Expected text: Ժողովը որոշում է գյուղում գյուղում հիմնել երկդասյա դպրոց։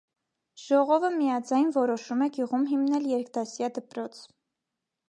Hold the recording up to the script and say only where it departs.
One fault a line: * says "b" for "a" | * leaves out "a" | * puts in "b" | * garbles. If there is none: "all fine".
* puts in "միաձայն"
* leaves out "գյուղում"